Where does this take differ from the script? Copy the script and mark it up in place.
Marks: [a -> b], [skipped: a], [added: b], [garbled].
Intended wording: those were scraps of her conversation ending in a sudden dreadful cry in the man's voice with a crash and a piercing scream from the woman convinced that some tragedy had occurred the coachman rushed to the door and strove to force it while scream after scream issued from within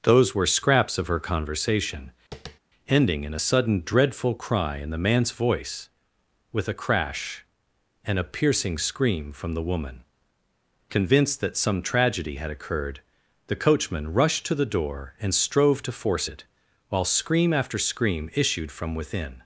those were scraps of her conversation ending in a sudden dreadful cry in the man's voice with a crash and a piercing scream from the woman convinced that some tragedy had occurred the coachman rushed to the door and strove to force it while scream after scream issued from within